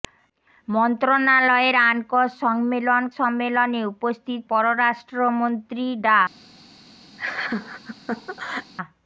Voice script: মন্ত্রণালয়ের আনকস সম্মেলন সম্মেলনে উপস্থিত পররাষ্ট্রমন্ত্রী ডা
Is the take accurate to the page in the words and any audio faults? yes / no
no